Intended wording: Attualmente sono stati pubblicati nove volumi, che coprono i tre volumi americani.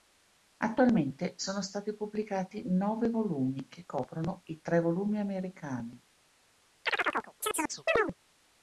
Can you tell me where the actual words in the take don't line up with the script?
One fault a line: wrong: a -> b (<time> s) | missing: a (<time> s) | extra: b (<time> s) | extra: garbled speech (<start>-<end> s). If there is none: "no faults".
no faults